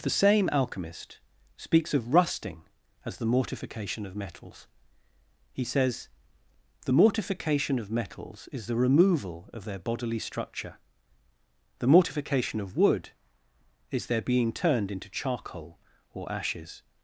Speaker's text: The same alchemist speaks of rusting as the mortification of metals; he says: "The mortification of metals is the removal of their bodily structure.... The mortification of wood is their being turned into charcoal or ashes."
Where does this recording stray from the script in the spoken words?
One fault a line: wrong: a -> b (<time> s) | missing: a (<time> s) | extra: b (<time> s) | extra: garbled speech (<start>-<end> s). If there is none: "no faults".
no faults